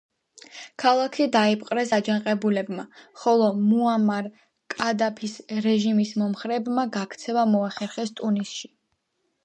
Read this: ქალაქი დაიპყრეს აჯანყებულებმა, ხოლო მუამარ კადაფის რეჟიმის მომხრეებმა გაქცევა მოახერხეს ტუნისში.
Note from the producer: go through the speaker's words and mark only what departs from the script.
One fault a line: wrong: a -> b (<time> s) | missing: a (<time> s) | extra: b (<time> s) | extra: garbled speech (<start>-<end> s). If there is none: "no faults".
no faults